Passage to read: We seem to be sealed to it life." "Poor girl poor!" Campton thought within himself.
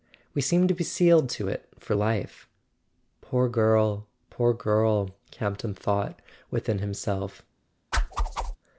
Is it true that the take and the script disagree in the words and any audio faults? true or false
true